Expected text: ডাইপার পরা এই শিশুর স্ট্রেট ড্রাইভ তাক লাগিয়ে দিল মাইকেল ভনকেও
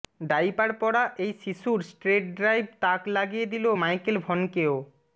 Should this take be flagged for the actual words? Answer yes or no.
no